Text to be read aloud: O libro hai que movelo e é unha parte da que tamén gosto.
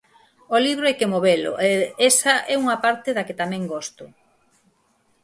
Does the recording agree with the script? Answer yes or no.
no